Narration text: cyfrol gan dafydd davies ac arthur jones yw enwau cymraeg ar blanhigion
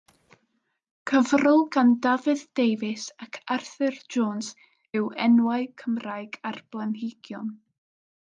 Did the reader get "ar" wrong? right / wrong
right